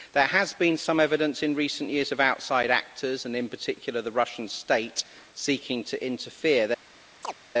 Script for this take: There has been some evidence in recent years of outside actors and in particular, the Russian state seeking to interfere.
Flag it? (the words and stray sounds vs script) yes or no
yes